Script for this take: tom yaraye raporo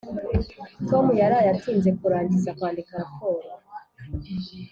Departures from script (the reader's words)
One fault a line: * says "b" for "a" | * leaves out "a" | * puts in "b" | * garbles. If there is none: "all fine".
* puts in "atinze kurangiza kwandika"